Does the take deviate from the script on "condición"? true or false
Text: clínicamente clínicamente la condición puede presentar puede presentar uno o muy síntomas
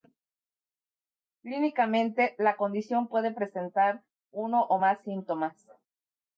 false